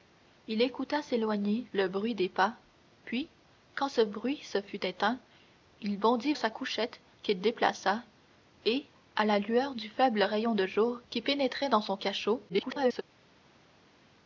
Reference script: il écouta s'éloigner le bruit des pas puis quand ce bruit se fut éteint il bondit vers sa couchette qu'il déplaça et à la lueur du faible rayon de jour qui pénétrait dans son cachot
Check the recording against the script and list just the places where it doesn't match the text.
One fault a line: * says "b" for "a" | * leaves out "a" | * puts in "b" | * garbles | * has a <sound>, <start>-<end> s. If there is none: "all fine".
* leaves out "vers"
* garbles